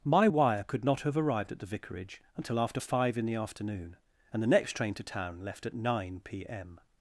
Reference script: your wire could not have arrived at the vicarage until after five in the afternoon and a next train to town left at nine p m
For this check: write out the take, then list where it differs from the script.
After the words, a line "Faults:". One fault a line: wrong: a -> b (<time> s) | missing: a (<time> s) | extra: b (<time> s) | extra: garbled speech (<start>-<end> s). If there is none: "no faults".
my wire could not have arrived at the vicarage until after five in the afternoon and the next train to town left at nine p m
Faults:
wrong: your -> my (0.0 s)
wrong: a -> the (4.4 s)